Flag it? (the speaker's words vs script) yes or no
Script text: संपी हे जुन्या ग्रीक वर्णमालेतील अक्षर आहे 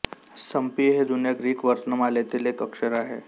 yes